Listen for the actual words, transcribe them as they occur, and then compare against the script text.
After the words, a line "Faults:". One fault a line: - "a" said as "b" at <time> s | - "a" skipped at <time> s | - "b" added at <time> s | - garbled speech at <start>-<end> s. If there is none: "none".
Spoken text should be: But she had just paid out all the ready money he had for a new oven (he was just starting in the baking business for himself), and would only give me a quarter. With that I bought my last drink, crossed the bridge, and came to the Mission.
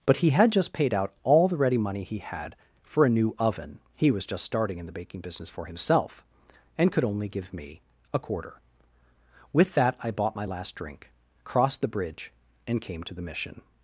But he had just paid out all the ready money he had for a new oven (he was just starting in the baking business for himself), and could only give me a quarter. With that I bought my last drink, crossed the bridge, and came to the Mission.
Faults:
- "she" said as "he" at 0.2 s
- "would" said as "could" at 6.9 s